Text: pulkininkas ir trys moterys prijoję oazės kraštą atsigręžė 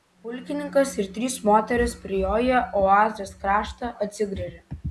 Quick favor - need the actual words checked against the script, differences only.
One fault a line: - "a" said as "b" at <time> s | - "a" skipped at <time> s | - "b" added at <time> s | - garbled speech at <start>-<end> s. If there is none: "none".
none